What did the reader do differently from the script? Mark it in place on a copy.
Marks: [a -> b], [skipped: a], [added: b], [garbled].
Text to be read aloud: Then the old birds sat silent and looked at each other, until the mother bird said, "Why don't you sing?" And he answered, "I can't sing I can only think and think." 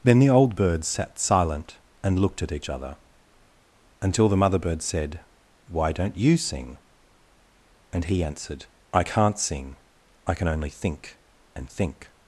Then the old birds sat silent and looked at each other, until the mother bird said, "Why don't you sing?" And he answered, "I can't sing I can only think and think."